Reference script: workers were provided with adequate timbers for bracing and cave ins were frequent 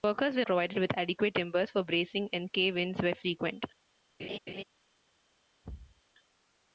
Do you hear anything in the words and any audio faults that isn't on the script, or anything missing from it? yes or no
yes